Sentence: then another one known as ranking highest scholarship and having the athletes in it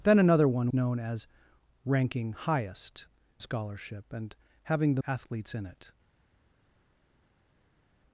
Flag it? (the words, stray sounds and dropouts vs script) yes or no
no